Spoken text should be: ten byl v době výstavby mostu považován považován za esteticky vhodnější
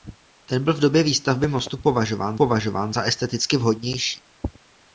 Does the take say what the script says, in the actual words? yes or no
yes